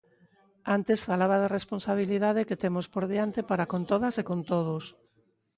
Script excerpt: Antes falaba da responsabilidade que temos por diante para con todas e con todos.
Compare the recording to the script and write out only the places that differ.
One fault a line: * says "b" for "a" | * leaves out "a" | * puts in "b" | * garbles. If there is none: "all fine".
all fine